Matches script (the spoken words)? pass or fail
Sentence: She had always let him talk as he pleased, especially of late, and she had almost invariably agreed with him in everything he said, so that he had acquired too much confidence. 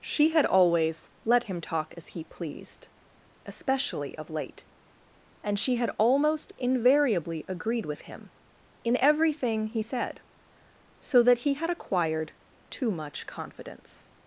pass